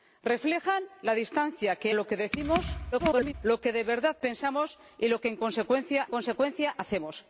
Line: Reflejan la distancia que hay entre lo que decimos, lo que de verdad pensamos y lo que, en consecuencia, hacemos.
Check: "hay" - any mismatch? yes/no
yes